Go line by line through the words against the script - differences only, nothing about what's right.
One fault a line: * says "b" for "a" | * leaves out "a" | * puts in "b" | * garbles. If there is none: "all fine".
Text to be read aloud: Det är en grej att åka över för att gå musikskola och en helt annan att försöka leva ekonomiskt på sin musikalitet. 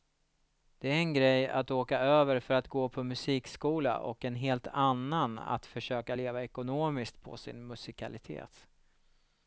* puts in "på"